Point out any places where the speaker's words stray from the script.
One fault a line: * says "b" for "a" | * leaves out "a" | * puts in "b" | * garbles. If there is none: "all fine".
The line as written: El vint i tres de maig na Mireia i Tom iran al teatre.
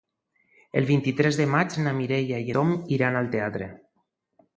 all fine